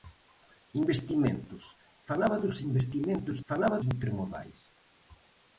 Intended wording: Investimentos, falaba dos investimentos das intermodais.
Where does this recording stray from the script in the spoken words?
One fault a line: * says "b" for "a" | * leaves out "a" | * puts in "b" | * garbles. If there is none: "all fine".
* says "falaba" for "das"